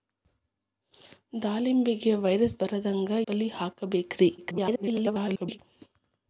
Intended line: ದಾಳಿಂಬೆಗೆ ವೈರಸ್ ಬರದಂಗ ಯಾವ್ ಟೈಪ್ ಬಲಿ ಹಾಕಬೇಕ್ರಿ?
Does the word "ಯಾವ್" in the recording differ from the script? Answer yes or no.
yes